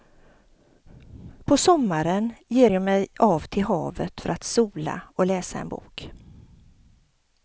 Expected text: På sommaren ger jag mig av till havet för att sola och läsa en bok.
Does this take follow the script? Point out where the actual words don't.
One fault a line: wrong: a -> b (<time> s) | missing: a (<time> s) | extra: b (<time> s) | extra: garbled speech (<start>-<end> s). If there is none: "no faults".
no faults